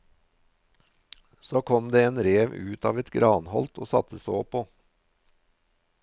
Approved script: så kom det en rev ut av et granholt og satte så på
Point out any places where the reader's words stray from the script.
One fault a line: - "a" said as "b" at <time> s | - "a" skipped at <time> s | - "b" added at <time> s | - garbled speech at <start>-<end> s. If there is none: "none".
none